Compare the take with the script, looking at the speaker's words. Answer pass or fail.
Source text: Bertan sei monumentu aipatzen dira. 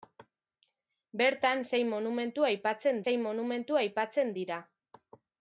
fail